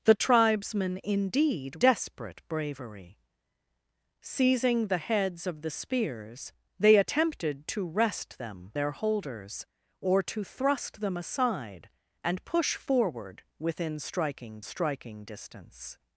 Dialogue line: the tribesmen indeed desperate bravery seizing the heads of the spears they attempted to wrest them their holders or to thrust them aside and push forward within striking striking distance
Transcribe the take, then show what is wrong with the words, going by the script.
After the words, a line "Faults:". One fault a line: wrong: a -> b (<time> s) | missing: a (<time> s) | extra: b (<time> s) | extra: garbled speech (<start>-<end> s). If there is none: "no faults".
the tribesmen indeed desperate bravery seizing the heads of the spears they attempted to wrest them their holders or to thrust them aside and push forward within striking striking distance
Faults:
no faults